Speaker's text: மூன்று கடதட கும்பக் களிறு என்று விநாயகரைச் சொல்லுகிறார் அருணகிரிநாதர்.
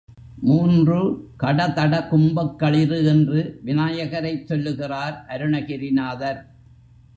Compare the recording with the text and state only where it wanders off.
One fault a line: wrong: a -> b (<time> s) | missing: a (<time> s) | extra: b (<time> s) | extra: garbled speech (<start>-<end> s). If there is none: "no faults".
no faults